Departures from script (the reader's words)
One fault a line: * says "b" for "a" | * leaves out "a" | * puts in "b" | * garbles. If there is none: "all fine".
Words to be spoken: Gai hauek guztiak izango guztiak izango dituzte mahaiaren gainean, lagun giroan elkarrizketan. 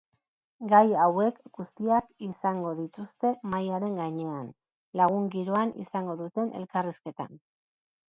* leaves out "guztiak izango"
* puts in "izango duten"